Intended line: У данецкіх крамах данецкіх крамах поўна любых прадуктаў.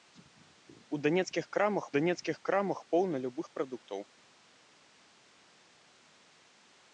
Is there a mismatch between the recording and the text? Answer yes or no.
no